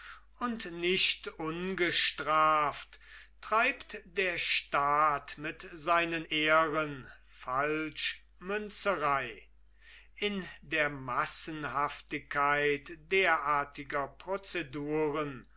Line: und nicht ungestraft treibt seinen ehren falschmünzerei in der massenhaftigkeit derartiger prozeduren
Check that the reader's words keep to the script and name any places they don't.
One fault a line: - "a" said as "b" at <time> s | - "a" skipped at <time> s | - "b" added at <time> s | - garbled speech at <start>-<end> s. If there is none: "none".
- "der staat mit" added at 4.0 s